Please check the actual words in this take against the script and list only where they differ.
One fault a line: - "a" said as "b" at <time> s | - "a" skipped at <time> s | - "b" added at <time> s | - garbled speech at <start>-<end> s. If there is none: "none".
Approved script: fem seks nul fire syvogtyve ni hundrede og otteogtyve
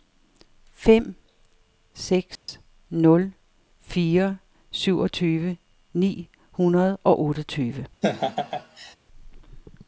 none